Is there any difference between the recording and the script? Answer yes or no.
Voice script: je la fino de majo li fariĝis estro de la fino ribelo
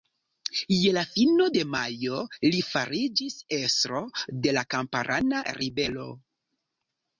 yes